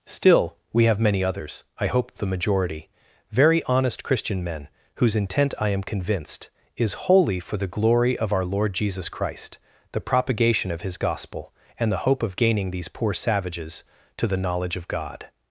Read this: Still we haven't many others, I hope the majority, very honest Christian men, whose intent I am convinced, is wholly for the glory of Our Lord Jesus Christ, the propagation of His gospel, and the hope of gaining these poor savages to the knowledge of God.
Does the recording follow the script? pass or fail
fail